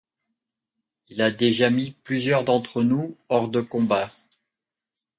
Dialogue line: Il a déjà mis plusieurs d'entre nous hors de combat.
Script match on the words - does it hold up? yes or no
yes